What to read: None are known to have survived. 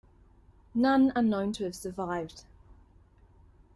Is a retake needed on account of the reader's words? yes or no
no